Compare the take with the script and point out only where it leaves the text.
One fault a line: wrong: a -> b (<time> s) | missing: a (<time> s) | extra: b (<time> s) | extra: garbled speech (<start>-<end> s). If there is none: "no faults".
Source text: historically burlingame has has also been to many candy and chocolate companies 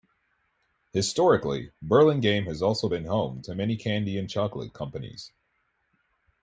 missing: has (2.6 s)
extra: home (3.0 s)